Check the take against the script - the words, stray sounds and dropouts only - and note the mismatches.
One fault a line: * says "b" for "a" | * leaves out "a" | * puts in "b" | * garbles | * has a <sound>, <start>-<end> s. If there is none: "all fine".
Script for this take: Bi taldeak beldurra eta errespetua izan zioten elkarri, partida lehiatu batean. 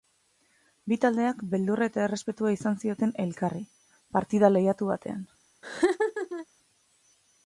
* has a laugh, 5.6-6.5 s